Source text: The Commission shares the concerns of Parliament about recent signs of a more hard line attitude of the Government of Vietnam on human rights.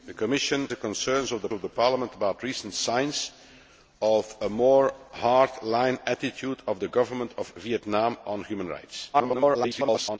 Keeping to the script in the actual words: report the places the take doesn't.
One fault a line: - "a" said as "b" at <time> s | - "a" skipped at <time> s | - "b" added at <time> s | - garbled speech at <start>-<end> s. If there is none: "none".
- "shares" skipped at 0.7 s
- "of" added at 1.5 s
- garbled speech at 9.1-10.2 s